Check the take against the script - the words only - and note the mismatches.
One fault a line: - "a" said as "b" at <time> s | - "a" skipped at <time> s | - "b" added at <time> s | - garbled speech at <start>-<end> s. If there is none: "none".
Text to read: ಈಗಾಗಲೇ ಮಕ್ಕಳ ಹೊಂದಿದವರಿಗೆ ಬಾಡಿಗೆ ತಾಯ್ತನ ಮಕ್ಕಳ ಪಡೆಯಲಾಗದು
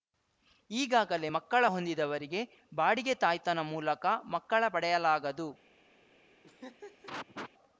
- "ಮೂಲಕ" added at 3.7 s